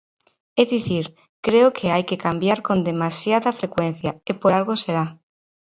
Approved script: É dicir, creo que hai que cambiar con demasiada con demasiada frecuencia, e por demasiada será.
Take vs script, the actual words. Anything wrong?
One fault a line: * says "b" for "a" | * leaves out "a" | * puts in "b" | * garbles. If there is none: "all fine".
* leaves out "con demasiada"
* says "algo" for "demasiada"